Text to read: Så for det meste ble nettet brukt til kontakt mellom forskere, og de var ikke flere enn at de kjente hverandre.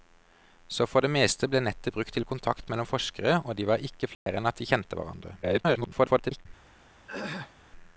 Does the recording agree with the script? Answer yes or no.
no